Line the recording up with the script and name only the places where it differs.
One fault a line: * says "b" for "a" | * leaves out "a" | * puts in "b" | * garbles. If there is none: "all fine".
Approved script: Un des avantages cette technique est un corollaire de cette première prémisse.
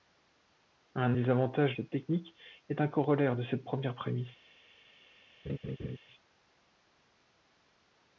all fine